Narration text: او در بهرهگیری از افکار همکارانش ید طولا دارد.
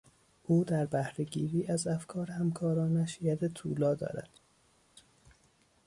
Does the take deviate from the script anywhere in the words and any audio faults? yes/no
no